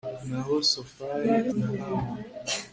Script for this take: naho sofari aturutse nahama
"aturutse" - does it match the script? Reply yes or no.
no